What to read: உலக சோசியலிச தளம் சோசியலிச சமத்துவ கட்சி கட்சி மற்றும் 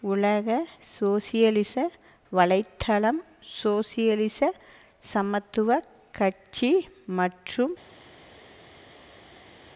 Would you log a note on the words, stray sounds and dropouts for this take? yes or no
yes